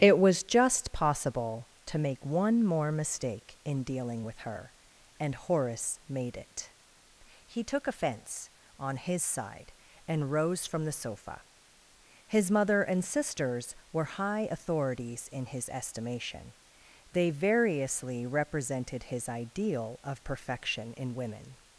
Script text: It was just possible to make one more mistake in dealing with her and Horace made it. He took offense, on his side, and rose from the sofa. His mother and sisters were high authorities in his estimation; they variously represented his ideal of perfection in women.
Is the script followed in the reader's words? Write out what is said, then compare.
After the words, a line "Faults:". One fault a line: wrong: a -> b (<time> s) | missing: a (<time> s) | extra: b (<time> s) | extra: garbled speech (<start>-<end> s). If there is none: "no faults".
It was just possible to make one more mistake in dealing with her and Horace made it. He took offense, on his side, and rose from the sofa. His mother and sisters were high authorities in his estimation; they variously represented his ideal of perfection in women.
Faults:
no faults